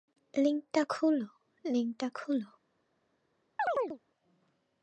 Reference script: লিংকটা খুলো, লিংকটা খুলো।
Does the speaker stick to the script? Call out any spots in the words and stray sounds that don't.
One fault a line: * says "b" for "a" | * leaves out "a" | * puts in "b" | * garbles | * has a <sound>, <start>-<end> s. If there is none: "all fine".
* has a chirp, 3.6-4.0 s